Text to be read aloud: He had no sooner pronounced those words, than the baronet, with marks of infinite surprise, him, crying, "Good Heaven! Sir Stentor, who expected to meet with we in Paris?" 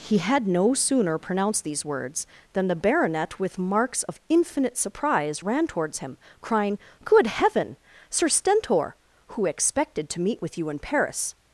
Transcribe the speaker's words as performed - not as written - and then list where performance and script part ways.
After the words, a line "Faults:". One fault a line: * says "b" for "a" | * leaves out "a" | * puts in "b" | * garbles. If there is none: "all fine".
He had no sooner pronounced these words, than the baronet, with marks of infinite surprise, ran towards him, crying, "Good Heaven! Sir Stentor, who expected to meet with you in Paris?"
Faults:
* says "these" for "those"
* puts in "ran towards"
* says "you" for "we"